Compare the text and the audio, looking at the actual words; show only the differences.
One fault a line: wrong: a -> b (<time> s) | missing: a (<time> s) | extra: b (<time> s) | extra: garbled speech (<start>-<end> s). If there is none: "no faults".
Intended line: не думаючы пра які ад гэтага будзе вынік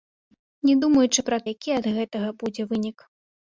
no faults